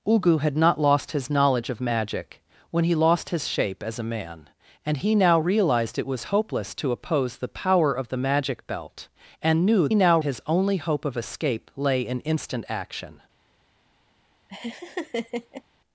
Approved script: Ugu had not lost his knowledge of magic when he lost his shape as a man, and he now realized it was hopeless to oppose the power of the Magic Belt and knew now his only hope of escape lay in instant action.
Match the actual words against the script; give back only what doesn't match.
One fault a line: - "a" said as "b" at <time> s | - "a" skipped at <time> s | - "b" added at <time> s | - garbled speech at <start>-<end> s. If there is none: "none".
none